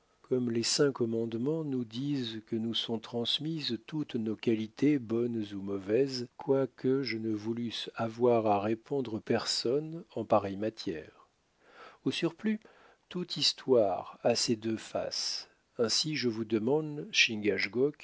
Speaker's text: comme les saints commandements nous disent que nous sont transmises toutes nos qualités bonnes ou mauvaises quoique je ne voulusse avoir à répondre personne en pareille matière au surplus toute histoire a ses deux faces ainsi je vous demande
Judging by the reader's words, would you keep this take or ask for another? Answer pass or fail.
pass